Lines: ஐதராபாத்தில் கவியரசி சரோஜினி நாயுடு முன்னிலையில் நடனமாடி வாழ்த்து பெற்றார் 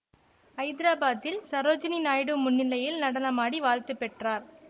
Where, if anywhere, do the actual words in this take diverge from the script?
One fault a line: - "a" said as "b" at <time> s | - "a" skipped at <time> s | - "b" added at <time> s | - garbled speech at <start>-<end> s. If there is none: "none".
- "கவியரசி" skipped at 1.4 s